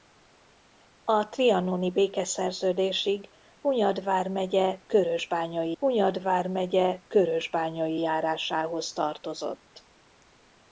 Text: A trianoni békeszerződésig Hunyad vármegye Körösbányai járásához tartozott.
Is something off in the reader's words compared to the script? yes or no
yes